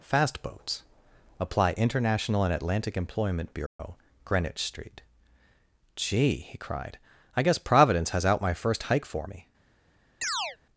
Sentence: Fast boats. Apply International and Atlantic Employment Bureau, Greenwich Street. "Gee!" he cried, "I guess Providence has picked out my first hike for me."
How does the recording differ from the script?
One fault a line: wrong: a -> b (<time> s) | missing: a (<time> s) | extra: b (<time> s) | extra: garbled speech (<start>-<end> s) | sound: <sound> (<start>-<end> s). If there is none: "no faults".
sound: dropout (3.7-3.8 s)
missing: picked (8.2 s)
sound: chirp (10.2-10.6 s)